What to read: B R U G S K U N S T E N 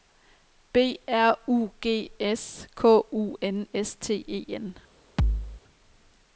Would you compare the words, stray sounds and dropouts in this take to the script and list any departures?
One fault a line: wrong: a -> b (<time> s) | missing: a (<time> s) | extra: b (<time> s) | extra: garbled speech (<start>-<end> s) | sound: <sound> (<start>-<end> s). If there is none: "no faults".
sound: thud (5.2-5.6 s)